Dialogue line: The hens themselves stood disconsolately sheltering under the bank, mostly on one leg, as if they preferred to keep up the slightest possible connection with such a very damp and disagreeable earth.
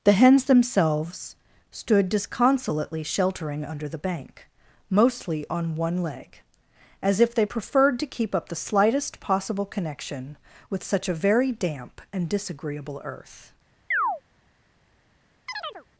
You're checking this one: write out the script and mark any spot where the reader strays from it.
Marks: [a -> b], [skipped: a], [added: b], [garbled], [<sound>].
The hens themselves stood disconsolately sheltering under the bank, mostly on one leg, as if they preferred to keep up the slightest possible connection with such a very damp and disagreeable earth. [chirp] [chirp]